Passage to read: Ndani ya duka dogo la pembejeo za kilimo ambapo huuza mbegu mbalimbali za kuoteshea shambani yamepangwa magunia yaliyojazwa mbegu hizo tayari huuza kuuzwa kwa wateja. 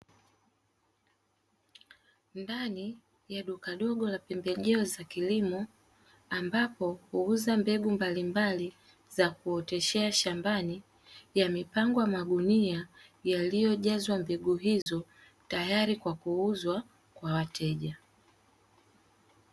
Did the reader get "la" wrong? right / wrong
right